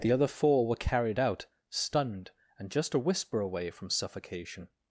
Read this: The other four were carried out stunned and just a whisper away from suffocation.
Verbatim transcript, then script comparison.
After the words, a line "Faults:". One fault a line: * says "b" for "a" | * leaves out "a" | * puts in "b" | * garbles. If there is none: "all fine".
The other four were carried out stunned and just a whisper away from suffocation.
Faults:
all fine